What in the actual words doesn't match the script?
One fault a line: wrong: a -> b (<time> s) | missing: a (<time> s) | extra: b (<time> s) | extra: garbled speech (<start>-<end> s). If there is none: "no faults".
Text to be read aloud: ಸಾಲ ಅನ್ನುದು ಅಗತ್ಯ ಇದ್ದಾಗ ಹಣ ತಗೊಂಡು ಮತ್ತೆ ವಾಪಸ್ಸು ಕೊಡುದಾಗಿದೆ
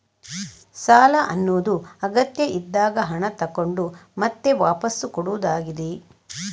no faults